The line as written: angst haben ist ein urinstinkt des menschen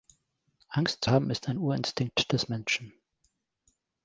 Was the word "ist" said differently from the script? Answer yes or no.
no